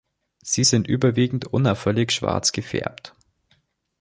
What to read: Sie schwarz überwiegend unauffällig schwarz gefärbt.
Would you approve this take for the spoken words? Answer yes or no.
no